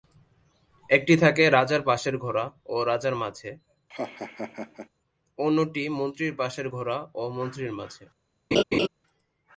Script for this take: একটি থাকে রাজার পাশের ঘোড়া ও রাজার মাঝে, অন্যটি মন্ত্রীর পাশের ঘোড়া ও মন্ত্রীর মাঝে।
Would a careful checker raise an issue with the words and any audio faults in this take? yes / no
yes